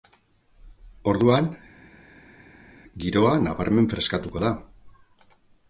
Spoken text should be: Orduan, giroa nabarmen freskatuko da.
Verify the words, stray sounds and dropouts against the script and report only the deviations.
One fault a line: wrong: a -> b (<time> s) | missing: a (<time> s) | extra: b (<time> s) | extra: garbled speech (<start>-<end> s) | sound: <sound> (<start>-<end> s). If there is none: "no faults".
no faults